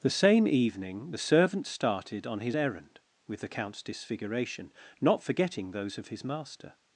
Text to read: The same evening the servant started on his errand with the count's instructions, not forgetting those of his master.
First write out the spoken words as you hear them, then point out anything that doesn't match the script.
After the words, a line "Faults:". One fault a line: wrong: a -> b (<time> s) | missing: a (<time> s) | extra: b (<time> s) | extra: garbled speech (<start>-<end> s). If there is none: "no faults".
The same evening the servant started on his errand with the count's disfiguration, not forgetting those of his master.
Faults:
wrong: instructions -> disfiguration (3.8 s)